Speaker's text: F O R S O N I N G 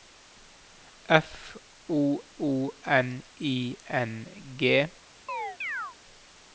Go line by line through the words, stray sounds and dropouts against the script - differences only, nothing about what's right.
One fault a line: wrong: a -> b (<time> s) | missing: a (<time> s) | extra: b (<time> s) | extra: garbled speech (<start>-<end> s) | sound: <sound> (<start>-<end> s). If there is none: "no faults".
missing: R S (2.2 s)
sound: chirp (5.3-6.0 s)